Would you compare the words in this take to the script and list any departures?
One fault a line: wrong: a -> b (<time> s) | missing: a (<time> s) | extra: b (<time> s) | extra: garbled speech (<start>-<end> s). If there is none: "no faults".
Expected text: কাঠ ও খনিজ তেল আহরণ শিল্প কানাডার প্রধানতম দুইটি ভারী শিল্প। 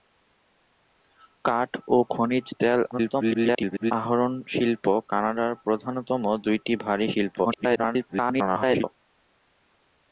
extra: garbled speech (2.9-3.9 s)
extra: garbled speech (7.4-8.8 s)